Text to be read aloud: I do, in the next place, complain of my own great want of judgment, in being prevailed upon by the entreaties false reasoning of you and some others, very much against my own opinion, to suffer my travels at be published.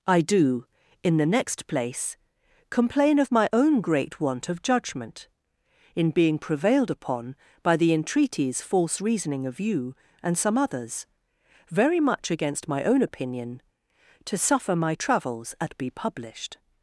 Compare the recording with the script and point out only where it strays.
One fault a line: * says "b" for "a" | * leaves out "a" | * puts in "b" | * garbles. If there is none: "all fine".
all fine